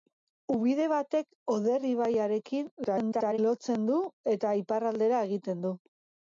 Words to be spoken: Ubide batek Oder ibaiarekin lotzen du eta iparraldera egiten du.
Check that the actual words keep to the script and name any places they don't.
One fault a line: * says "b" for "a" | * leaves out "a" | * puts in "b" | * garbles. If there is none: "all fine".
* garbles